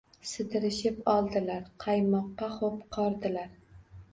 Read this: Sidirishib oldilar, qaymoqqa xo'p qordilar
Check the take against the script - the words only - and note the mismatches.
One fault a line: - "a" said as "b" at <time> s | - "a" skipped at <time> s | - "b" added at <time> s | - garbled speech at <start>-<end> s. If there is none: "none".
none